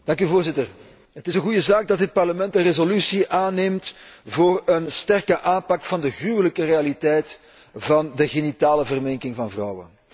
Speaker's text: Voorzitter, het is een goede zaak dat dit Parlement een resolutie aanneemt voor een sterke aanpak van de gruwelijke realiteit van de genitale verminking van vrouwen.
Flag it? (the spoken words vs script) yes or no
no